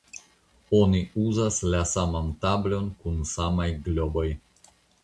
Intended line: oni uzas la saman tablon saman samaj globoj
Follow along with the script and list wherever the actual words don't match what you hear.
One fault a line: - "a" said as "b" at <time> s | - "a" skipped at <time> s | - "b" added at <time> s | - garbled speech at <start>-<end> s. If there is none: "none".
- "saman" said as "kun" at 3.0 s